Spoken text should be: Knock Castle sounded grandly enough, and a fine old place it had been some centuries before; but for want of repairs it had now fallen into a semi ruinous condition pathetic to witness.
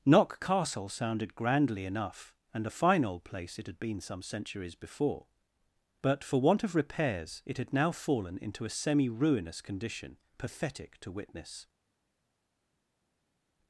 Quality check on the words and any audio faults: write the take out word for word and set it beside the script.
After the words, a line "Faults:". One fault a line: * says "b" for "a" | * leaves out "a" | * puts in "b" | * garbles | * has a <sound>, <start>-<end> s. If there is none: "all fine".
Knock Castle sounded grandly enough, and a fine old place it had been some centuries before; but for want of repairs it had now fallen into a semi ruinous condition pathetic to witness.
Faults:
all fine